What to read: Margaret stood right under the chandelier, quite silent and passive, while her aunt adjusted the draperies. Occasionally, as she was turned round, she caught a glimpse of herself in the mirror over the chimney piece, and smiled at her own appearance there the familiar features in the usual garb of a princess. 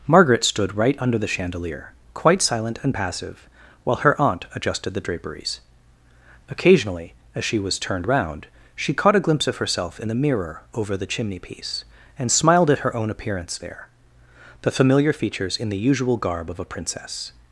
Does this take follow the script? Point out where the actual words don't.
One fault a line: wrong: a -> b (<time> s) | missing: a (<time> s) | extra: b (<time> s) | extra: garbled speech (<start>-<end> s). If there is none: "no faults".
no faults